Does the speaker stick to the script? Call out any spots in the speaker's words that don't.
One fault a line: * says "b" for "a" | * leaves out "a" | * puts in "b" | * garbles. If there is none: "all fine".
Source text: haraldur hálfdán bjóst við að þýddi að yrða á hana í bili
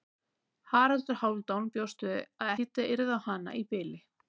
all fine